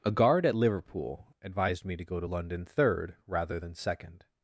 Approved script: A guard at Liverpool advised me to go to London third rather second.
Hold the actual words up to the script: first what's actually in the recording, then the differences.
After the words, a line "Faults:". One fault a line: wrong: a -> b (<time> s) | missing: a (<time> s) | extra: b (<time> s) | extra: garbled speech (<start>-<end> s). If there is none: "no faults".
A guard at Liverpool advised me to go to London third rather than second.
Faults:
extra: than (3.6 s)